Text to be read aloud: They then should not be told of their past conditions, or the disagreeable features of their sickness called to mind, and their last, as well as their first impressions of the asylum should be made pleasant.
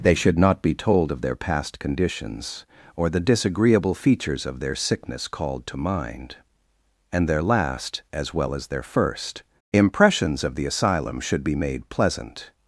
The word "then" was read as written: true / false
false